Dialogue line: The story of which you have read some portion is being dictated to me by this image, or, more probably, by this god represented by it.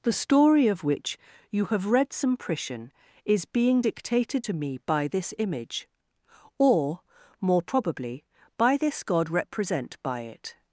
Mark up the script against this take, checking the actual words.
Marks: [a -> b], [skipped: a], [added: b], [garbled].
The story of which you have read some portion is being dictated to me by this image, or, more probably, by this god [represented -> represent] by it.